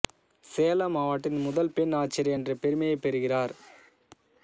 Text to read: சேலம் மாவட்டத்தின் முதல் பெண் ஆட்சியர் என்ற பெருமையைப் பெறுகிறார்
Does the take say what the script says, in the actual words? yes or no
yes